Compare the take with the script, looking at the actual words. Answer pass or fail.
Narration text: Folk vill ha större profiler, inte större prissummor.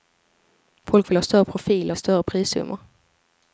fail